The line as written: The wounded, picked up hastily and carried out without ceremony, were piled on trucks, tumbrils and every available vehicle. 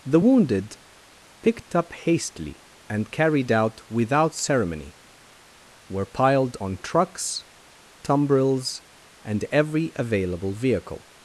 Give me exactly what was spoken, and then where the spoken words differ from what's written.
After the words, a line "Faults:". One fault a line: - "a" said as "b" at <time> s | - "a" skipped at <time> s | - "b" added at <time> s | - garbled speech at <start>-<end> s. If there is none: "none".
The wounded, picked up hastily and carried out without ceremony, were piled on trucks, tumbrils and every available vehicle.
Faults:
none